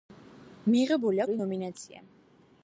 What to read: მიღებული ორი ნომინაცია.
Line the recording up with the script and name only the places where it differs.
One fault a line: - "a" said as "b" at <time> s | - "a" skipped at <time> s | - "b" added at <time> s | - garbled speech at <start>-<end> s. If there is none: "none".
none